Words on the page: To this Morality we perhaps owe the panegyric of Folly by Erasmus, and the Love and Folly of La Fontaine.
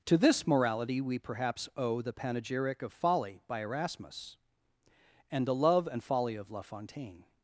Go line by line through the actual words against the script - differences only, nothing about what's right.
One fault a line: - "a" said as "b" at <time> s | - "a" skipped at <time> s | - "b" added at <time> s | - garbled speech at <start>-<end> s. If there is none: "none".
none